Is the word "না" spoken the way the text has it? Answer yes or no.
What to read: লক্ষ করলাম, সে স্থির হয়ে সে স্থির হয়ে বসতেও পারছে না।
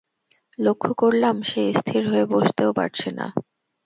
yes